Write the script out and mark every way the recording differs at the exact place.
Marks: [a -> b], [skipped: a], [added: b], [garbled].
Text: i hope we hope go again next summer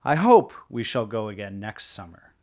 i hope we [hope -> shall] go again next summer